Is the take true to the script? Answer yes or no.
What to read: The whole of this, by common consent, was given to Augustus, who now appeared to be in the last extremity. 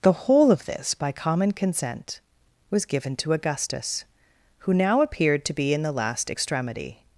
yes